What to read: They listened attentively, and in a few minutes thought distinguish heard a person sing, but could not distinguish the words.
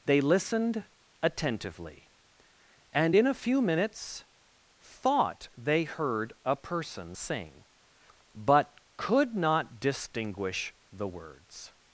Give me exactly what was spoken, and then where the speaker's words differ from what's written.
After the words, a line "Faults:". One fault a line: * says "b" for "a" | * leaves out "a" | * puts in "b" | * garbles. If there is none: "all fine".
They listened attentively, and in a few minutes thought they heard a person sing, but could not distinguish the words.
Faults:
* says "they" for "distinguish"